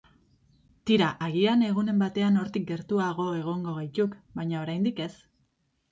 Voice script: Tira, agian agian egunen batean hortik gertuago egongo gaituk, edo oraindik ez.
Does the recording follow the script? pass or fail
fail